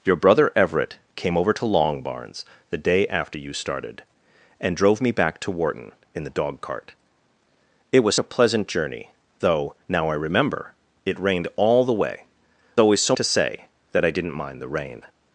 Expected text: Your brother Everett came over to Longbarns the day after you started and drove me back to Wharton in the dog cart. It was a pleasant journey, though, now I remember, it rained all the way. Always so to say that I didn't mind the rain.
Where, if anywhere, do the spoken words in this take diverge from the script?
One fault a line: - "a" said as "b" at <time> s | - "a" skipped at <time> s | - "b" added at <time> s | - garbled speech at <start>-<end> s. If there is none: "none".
none